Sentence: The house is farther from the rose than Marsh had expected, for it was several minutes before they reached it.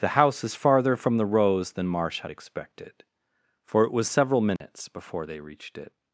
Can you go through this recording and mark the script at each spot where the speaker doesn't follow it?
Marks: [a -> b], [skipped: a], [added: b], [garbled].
The house is farther from the rose than Marsh had expected, for it was several minutes before they reached it.